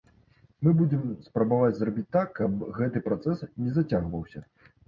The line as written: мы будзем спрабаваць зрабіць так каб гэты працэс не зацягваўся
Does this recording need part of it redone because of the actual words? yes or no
no